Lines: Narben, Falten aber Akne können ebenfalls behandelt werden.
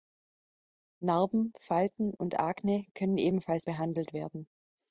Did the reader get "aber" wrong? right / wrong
wrong